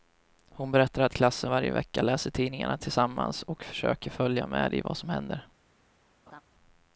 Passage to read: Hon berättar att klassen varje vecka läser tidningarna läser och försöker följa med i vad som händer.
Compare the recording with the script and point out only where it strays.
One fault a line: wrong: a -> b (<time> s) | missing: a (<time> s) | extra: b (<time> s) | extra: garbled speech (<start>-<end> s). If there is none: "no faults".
wrong: läser -> tillsammans (2.8 s)